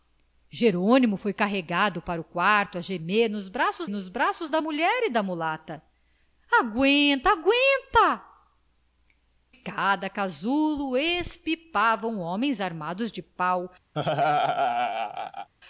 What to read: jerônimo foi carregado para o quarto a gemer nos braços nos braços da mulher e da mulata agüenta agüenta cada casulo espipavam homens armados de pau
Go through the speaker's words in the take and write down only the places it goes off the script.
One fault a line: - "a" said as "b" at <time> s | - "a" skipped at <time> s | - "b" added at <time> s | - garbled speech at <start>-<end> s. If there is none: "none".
none